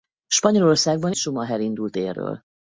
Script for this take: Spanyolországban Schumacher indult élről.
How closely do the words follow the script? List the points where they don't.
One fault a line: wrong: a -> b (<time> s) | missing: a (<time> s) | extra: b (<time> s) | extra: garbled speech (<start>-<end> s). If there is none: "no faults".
no faults